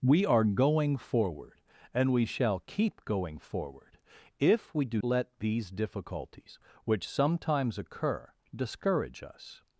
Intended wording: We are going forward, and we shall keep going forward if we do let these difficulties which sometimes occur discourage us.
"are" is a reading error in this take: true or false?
false